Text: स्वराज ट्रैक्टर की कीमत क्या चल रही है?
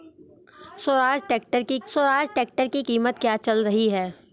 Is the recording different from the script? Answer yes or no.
yes